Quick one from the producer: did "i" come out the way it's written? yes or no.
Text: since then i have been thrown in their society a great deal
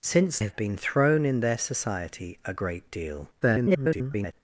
no